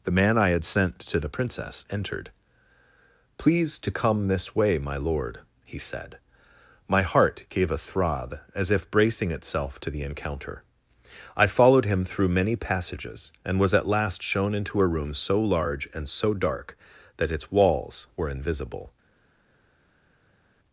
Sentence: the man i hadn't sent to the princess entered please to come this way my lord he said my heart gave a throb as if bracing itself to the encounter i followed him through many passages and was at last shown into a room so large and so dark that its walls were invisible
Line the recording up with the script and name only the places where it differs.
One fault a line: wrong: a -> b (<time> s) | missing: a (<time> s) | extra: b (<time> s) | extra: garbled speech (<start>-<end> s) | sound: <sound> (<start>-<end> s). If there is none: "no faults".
wrong: hadn't -> had (0.5 s)